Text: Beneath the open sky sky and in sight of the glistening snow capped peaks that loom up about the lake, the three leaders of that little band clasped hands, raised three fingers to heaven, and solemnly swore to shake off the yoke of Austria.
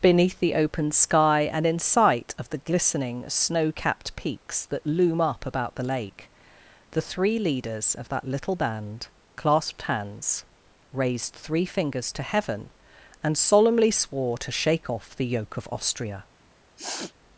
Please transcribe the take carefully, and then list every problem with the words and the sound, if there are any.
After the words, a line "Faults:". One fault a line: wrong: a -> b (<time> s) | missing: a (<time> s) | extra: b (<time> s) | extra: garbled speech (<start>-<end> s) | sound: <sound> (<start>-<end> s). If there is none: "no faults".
Beneath the open sky and in sight of the glistening snow capped peaks that loom up about the lake, the three leaders of that little band clasped hands, raised three fingers to heaven, and solemnly swore to shake off the yoke of Austria.
Faults:
missing: sky (1.5 s)
sound: sniff (16.8-17.1 s)